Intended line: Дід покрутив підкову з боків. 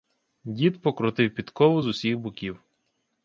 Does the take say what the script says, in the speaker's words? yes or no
no